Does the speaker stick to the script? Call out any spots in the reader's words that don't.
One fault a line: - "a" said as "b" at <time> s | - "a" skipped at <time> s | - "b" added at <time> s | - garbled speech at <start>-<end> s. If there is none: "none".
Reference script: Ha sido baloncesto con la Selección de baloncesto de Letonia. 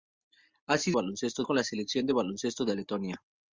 none